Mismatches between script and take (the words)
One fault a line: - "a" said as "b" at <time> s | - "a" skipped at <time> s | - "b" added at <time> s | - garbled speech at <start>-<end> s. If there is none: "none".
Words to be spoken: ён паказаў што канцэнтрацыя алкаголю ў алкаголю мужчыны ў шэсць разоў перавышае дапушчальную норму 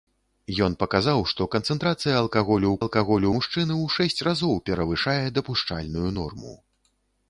none